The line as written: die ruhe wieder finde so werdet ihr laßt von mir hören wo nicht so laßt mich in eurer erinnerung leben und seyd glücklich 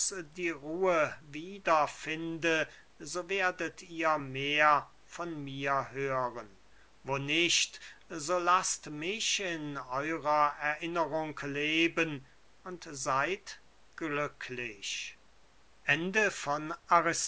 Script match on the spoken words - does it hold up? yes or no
no